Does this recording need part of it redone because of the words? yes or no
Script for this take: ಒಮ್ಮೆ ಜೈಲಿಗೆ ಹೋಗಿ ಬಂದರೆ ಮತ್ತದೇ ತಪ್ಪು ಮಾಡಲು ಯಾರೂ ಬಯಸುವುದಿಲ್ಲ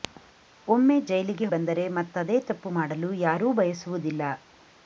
yes